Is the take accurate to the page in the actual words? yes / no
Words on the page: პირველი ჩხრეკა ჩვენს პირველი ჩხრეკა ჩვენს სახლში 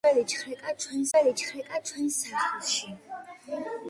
yes